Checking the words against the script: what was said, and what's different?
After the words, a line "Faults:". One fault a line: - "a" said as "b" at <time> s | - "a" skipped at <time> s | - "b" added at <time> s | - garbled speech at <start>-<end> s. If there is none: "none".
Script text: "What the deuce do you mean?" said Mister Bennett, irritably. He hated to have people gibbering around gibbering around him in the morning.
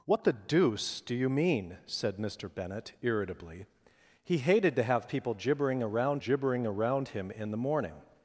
"What the deuce do you mean?" said Mister Bennett, irritably. He hated to have people gibbering around gibbering around him in the morning.
Faults:
none